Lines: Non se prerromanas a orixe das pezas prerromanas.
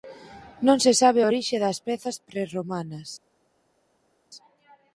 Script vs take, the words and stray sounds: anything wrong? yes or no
yes